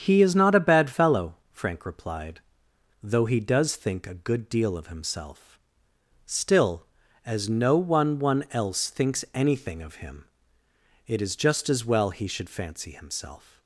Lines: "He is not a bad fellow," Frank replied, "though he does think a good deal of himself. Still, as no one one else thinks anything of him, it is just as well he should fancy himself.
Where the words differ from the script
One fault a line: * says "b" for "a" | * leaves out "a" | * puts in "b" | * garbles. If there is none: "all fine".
all fine